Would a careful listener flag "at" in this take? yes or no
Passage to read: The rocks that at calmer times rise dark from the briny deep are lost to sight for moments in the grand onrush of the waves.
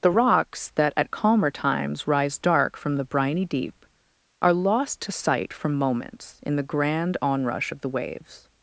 no